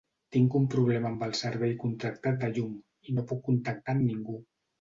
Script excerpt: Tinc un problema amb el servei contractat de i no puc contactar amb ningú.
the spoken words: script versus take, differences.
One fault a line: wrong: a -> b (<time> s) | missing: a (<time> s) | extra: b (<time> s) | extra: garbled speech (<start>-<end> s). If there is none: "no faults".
extra: llum (2.6 s)